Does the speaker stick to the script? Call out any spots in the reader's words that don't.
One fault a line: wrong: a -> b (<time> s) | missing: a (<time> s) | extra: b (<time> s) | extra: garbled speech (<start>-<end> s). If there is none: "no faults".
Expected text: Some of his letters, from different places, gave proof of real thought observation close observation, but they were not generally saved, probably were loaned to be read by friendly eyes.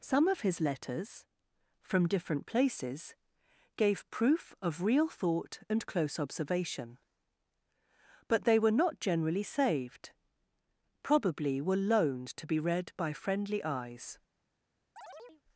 wrong: observation -> and (5.7 s)